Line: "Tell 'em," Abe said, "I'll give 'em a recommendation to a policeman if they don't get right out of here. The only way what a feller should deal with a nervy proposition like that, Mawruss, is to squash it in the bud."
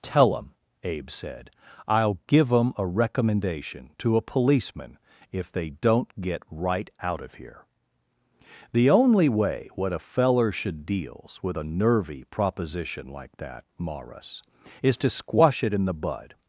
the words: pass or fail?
fail